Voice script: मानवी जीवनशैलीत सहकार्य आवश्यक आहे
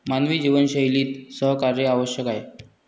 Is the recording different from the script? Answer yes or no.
no